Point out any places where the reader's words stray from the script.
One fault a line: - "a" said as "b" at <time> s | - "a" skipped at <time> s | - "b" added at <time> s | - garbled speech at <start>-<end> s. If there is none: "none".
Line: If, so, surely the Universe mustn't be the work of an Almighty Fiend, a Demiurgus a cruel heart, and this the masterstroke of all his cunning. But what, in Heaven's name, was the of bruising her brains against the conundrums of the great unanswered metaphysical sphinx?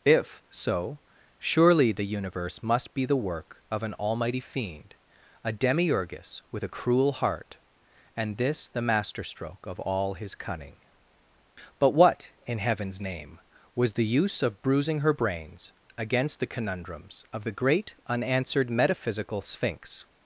- "mustn't" said as "must" at 2.6 s
- "with" added at 6.5 s
- "use" added at 14.1 s